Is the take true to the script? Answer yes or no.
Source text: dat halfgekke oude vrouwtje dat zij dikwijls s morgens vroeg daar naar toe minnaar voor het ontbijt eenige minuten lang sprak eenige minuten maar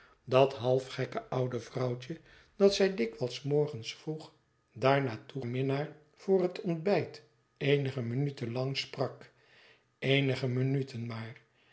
yes